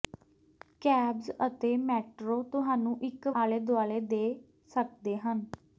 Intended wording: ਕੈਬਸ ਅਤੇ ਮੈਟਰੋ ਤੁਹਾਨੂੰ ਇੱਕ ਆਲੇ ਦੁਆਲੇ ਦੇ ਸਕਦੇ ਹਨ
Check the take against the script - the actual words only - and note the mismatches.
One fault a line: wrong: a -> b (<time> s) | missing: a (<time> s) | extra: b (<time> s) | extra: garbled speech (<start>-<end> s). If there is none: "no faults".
no faults